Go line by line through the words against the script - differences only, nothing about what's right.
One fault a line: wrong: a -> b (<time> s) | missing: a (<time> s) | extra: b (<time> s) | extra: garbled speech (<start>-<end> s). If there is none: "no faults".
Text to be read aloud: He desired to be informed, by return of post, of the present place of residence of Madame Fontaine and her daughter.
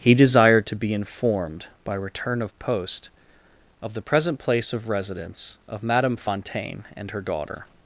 no faults